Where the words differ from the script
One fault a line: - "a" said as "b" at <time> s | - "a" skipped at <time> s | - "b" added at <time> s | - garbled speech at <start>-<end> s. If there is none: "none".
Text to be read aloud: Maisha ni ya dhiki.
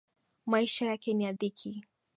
- "yake" added at 0.8 s